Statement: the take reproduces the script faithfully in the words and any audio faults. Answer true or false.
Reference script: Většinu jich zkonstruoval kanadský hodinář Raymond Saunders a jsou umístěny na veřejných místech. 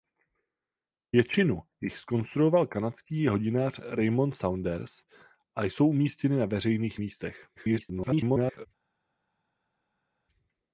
false